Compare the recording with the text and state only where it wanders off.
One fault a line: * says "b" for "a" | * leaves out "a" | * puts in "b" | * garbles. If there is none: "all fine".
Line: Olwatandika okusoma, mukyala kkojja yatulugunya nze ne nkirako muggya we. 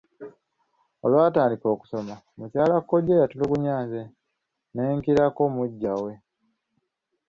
all fine